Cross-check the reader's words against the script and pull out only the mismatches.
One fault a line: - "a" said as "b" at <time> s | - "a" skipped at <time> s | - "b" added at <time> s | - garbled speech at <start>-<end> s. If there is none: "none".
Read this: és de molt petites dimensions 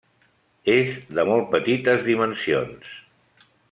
none